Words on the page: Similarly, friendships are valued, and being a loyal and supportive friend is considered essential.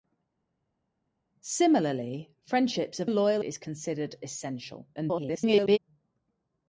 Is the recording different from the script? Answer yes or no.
yes